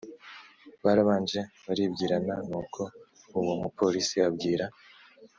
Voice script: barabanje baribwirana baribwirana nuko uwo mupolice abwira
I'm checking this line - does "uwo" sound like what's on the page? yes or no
yes